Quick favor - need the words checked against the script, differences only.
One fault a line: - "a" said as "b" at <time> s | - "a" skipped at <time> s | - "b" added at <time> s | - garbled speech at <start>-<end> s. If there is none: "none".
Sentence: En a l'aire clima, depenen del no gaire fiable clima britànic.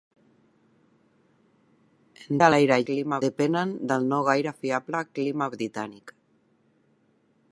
none